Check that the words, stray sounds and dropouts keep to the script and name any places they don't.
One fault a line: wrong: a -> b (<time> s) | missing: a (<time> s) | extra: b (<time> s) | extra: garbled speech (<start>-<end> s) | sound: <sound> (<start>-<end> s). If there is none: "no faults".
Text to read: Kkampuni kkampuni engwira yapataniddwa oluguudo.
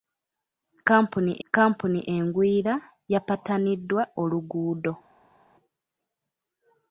no faults